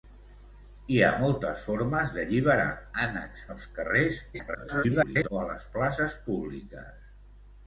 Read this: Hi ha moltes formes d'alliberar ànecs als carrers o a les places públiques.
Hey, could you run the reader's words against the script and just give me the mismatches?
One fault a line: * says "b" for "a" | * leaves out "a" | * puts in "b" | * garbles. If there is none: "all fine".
* garbles